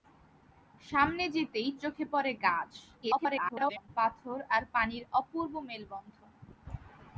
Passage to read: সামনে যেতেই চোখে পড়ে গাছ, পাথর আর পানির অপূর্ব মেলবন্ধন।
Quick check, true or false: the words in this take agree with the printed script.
false